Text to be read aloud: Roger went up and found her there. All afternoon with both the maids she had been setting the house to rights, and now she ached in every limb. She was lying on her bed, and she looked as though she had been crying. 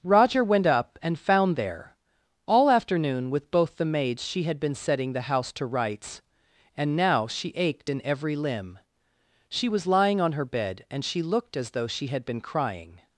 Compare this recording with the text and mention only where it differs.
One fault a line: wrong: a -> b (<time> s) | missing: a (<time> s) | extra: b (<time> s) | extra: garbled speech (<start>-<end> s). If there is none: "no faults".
missing: her (1.6 s)